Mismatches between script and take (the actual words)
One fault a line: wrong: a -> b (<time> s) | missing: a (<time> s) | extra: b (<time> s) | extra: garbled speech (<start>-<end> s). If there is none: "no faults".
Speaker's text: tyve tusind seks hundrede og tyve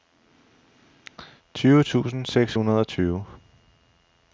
no faults